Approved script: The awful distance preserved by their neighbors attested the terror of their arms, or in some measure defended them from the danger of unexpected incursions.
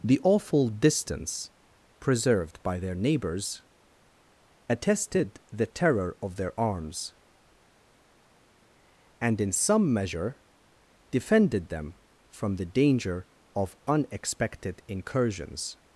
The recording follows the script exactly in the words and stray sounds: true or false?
false